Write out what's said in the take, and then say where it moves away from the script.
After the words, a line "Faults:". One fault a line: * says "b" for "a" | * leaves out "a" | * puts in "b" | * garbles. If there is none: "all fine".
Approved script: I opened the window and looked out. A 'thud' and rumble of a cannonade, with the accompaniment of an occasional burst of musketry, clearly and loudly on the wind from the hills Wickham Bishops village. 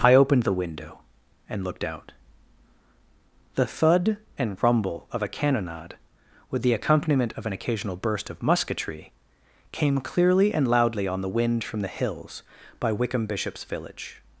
I opened the window and looked out. The 'thud' and rumble of a cannonade, with the accompaniment of an occasional burst of musketry, came clearly and loudly on the wind from the hills by Wickham Bishops village.
Faults:
* says "The" for "A"
* puts in "came"
* puts in "by"